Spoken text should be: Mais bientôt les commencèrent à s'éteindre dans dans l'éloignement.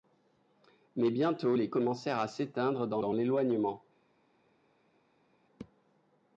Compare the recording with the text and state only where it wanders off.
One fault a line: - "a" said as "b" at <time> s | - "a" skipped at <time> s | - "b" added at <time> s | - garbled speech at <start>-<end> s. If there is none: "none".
none